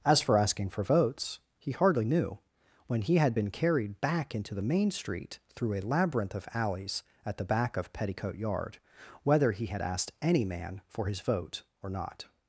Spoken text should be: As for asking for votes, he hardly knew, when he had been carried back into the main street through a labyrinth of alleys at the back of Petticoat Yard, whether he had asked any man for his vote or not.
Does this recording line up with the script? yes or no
yes